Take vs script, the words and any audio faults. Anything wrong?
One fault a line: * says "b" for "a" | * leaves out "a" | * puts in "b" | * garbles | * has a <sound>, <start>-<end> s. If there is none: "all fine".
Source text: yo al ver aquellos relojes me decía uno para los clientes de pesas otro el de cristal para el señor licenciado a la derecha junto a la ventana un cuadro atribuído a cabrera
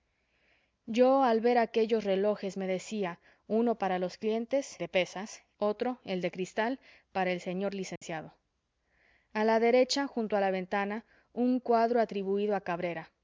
* has a dropout, 8.0-8.0 s